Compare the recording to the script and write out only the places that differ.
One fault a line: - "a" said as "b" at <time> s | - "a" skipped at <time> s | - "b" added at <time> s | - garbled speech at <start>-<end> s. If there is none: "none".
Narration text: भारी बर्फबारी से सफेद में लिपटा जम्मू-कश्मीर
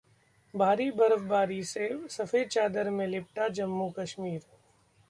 - "चादर" added at 2.5 s